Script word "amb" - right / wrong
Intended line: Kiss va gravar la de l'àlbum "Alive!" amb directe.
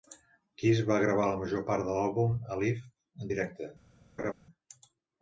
wrong